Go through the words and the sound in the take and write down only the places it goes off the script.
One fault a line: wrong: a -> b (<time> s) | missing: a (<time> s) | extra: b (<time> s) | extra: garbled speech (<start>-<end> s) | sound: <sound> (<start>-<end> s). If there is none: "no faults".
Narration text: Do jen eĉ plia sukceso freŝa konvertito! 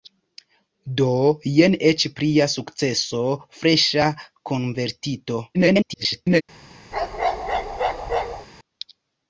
extra: garbled speech (5.5-6.4 s)
sound: bark (6.9-8.5 s)